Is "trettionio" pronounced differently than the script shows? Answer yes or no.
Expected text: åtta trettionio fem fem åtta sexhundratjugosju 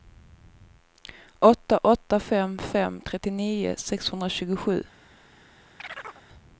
yes